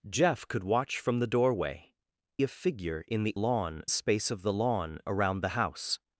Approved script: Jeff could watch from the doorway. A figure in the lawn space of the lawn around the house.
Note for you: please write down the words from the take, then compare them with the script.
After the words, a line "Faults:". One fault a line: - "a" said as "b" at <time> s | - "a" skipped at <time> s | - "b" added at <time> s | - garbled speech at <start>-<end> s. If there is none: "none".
Jeff could watch from the doorway. A figure in the lawn space of the lawn around the house.
Faults:
none